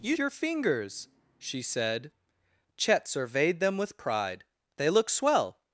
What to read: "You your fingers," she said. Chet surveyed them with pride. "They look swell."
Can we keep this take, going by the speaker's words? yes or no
yes